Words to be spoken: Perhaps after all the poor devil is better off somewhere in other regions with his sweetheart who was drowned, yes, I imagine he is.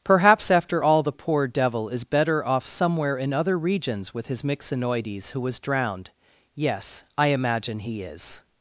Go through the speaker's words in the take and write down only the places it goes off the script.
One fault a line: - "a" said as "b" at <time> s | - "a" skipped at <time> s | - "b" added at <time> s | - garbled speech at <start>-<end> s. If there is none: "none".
- "sweetheart" said as "myxinoides" at 4.4 s